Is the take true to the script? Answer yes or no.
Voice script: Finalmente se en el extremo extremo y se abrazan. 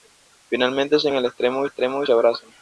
yes